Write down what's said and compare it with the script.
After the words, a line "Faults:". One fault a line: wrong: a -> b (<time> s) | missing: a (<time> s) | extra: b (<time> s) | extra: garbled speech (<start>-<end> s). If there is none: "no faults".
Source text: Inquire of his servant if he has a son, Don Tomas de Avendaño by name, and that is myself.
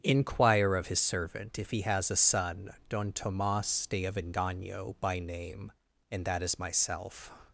Inquire of his servant if he has a son, Don Tomas de Avendaño by name, and that is myself.
Faults:
no faults